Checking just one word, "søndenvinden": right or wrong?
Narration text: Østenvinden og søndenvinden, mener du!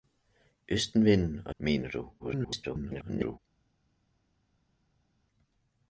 wrong